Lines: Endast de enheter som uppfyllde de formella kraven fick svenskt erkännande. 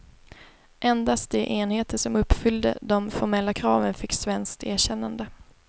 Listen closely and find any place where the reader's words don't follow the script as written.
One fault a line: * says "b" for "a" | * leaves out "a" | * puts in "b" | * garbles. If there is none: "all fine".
all fine